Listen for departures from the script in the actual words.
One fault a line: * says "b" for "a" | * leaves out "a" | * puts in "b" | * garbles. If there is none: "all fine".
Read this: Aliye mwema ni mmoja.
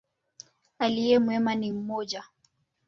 all fine